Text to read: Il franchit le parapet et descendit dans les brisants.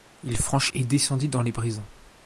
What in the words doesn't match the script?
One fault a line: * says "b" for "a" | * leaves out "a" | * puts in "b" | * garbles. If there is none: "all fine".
* leaves out "le parapet"